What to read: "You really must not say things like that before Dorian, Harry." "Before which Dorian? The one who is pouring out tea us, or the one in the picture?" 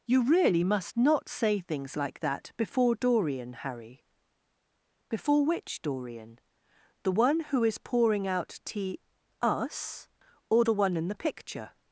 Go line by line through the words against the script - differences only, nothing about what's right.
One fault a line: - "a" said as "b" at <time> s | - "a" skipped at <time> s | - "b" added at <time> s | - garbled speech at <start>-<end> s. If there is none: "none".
none